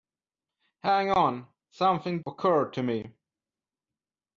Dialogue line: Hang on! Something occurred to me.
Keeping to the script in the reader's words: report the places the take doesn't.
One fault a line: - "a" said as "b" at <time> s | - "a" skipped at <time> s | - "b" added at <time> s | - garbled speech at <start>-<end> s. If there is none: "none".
none